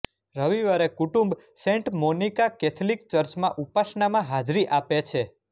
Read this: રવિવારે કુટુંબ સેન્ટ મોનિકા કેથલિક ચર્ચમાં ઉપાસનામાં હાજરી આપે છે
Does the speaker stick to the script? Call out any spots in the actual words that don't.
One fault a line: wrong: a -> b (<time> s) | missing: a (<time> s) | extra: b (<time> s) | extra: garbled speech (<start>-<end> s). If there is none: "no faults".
no faults